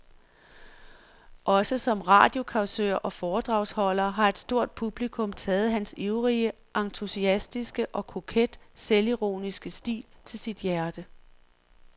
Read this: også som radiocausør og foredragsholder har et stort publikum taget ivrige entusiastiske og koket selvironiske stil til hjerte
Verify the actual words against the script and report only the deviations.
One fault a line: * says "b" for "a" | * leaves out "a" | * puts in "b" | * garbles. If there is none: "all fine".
* puts in "hans"
* puts in "sit"